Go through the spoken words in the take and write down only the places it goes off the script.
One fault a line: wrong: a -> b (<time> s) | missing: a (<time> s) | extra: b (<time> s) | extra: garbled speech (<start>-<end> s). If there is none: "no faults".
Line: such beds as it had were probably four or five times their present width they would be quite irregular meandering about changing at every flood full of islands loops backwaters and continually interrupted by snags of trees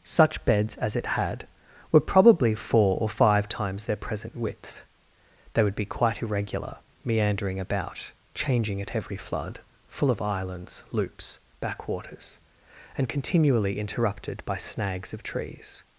no faults